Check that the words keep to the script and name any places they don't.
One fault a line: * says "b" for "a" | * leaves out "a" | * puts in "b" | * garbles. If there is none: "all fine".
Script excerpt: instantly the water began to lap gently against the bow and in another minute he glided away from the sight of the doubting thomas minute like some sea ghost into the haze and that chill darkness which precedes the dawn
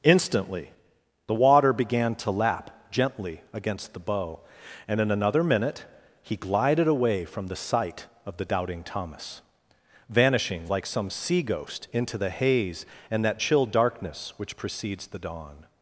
* says "vanishing" for "minute"